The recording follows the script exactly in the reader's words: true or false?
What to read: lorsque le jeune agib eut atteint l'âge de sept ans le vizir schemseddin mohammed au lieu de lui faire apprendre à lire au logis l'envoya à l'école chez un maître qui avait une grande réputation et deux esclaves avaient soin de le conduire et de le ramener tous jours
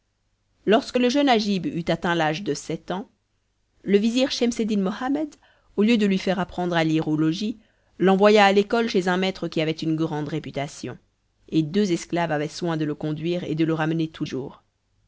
true